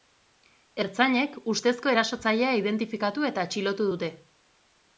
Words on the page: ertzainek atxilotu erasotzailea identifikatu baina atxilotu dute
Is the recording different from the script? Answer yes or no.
yes